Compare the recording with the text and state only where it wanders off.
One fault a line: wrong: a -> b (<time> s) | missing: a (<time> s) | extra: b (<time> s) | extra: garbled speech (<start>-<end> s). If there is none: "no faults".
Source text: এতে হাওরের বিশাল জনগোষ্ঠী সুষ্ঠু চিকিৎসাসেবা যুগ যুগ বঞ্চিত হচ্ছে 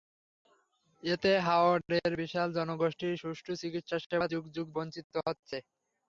no faults